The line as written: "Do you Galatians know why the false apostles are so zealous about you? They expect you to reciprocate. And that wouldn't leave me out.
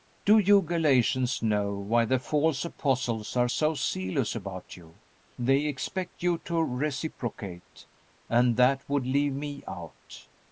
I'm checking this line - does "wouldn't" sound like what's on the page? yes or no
no